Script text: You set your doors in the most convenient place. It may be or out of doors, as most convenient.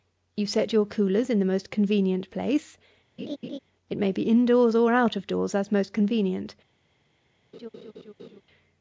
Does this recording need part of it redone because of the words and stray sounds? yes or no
yes